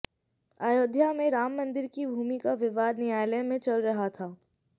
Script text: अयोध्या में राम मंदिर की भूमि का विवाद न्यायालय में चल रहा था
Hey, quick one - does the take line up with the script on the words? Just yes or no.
yes